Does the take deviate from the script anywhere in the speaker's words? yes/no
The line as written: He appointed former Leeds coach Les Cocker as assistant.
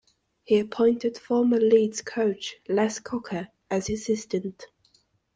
no